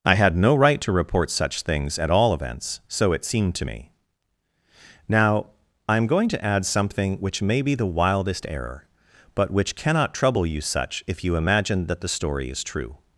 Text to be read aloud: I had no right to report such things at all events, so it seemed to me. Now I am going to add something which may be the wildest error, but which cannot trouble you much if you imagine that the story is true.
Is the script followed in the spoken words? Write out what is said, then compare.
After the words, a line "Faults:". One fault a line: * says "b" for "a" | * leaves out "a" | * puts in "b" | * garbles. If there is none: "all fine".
I had no right to report such things at all events, so it seemed to me. Now I am going to add something which may be the wildest error, but which cannot trouble you such if you imagine that the story is true.
Faults:
* says "such" for "much"